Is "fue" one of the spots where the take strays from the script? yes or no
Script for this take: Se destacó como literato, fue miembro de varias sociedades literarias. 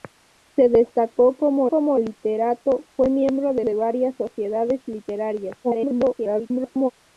no